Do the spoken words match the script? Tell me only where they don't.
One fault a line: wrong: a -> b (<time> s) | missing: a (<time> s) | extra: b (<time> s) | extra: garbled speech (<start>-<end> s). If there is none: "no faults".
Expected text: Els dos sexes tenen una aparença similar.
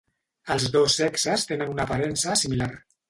no faults